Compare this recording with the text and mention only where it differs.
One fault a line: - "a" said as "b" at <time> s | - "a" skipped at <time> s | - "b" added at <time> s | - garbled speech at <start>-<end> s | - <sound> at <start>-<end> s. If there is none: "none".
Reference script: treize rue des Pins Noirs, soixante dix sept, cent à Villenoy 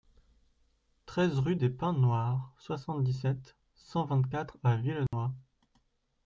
- "vingt quatre" added at 4.1 s
- dropout at 5.1-5.1 s